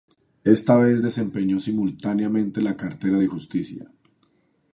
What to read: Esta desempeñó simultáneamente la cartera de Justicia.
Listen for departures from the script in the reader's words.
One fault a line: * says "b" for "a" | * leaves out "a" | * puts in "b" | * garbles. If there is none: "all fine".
* puts in "vez"